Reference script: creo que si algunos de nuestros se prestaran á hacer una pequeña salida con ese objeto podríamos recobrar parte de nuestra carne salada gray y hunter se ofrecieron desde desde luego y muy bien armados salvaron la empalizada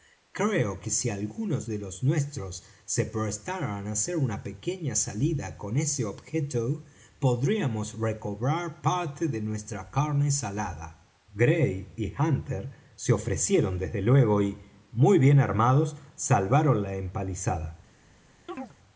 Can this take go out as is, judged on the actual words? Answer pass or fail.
fail